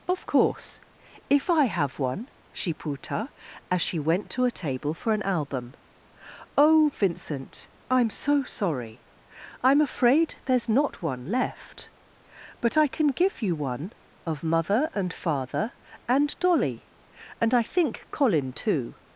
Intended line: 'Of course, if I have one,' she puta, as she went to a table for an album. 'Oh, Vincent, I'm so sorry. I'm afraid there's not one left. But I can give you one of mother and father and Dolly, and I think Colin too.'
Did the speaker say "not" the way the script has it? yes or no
yes